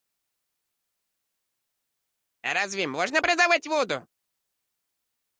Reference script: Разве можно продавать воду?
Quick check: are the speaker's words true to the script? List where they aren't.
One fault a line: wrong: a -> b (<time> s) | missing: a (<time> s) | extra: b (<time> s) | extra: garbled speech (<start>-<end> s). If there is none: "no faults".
no faults